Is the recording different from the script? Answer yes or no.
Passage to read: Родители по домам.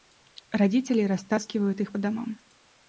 yes